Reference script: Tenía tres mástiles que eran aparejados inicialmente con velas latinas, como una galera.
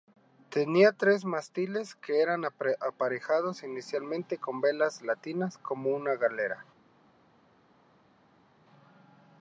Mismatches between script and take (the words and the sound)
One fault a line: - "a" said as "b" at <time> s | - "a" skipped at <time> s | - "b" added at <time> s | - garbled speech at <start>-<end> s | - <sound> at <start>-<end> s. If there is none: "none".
none